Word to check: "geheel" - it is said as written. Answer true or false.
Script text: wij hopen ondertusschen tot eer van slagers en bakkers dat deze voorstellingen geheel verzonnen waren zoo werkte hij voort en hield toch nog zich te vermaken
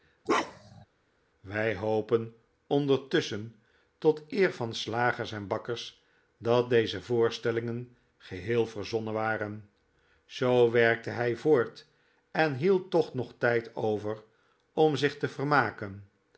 true